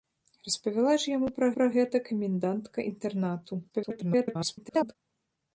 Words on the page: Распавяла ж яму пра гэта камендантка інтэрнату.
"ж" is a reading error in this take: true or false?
false